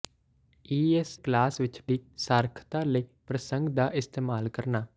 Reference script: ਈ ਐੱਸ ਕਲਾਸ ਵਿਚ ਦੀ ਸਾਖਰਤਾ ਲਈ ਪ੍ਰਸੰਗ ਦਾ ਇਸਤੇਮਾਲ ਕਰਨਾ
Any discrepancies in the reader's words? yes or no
no